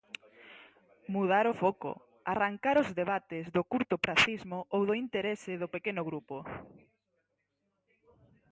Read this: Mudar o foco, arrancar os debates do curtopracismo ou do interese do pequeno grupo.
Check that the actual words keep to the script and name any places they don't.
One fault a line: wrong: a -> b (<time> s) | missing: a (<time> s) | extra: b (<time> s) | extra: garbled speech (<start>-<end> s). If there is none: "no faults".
no faults